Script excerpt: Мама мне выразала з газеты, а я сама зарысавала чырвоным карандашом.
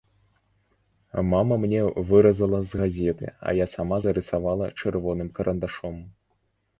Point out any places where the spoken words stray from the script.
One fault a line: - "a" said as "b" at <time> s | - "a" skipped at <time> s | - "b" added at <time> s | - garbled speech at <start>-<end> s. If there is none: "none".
none